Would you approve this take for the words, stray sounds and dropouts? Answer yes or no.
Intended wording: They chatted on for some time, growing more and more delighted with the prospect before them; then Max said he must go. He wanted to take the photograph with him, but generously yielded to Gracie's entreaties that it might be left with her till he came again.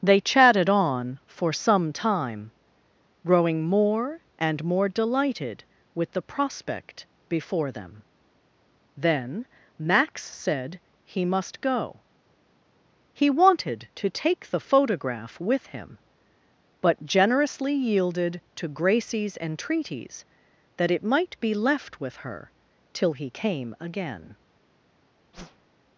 no